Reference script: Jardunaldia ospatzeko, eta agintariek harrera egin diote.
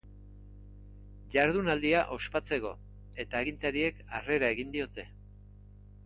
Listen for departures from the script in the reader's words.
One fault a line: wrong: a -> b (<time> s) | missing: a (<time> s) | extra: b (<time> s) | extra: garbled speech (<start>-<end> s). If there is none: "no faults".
no faults